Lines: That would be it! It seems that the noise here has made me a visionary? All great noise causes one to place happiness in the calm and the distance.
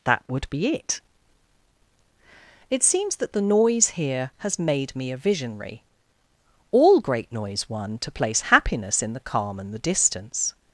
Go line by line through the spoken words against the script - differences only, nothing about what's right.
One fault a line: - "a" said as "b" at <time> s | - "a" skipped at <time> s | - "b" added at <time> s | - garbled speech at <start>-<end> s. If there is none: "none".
- "causes" skipped at 7.7 s